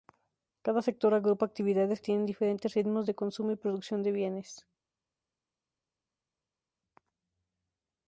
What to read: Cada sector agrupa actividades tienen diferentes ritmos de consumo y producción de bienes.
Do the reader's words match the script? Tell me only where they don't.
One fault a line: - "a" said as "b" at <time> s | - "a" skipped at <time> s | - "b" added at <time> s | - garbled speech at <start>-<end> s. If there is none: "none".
none